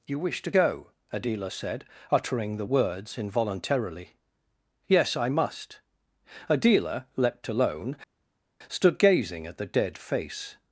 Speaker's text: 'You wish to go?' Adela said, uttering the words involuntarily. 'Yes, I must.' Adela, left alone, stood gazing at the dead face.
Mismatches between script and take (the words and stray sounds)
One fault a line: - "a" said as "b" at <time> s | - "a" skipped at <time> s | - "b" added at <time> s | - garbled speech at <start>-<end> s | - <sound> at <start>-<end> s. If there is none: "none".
- "left" said as "leapt" at 7.1 s